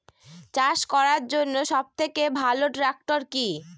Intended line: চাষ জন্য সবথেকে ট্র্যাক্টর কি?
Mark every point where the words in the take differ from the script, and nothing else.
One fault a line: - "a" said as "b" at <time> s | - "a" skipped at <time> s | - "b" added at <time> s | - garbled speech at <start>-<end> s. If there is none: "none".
- "করার" added at 0.9 s
- "ভালো" added at 2.4 s